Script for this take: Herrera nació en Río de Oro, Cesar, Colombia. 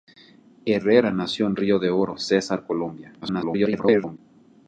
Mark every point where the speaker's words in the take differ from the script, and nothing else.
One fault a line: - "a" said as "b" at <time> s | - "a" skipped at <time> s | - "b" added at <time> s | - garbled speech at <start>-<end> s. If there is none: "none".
- garbled speech at 3.2-4.2 s